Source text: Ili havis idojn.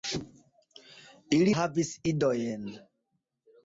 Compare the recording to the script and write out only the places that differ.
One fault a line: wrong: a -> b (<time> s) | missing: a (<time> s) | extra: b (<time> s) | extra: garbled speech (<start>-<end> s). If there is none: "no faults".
no faults